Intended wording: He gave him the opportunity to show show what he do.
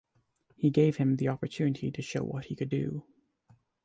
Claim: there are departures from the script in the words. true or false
true